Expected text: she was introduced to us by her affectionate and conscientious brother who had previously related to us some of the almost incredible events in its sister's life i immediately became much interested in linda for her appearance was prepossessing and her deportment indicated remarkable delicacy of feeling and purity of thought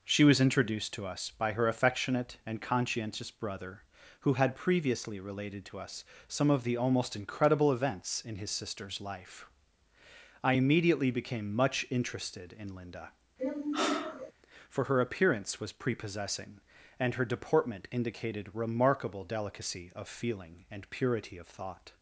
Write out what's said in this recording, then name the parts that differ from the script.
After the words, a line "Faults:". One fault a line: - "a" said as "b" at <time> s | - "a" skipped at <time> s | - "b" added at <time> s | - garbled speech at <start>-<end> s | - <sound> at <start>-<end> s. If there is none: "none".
she was introduced to us by her affectionate and conscientious brother who had previously related to us some of the almost incredible events in his sister's life i immediately became much interested in linda for her appearance was prepossessing and her deportment indicated remarkable delicacy of feeling and purity of thought
Faults:
- "its" said as "his" at 8.3 s
- sigh at 13.4-14.3 s